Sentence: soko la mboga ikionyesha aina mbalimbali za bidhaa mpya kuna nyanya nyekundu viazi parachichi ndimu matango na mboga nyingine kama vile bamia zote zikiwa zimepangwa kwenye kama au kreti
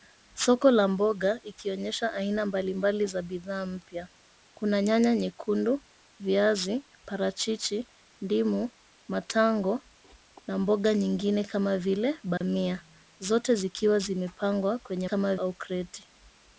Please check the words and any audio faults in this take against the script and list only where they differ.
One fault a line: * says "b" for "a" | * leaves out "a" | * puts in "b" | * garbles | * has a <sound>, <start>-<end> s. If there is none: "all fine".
* has a dropout, 12.4-12.4 s